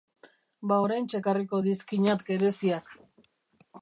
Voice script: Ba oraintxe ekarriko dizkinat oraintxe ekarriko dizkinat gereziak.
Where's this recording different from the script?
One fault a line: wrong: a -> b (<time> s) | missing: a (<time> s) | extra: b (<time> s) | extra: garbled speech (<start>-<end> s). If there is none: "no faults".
missing: oraintxe ekarriko dizkinat (2.2 s)